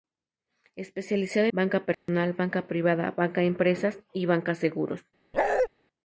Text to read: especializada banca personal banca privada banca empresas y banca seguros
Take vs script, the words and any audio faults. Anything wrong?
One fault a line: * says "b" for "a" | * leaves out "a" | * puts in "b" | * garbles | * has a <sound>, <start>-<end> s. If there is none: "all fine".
* has a dropout, 1.9-2.1 s
* has a bark, 5.3-5.7 s